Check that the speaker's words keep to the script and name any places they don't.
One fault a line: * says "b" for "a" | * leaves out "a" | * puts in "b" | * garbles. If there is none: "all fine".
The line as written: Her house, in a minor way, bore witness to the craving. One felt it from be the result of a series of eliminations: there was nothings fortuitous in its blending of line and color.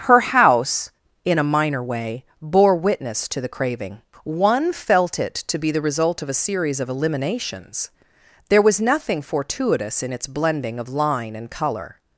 * says "to" for "from"
* says "nothing" for "nothings"